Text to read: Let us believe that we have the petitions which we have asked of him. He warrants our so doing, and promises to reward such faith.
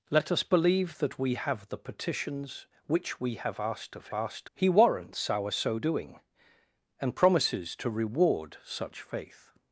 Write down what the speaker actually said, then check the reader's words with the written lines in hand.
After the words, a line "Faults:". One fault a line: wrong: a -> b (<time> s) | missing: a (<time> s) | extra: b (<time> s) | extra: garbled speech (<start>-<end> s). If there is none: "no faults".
Let us believe that we have the petitions which we have asked of asked. He warrants our so doing, and promises to reward such faith.
Faults:
wrong: him -> asked (4.1 s)